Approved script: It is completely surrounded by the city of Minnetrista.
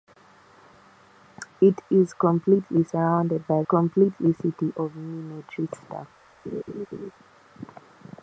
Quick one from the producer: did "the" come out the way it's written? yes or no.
no